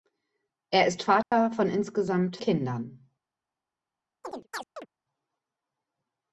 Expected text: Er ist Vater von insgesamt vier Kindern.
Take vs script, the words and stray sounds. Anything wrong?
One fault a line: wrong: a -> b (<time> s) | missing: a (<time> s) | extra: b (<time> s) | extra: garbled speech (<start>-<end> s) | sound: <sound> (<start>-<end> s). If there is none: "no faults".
sound: dropout (1.2-1.3 s)
missing: vier (2.4 s)
sound: chirp (4.2-4.9 s)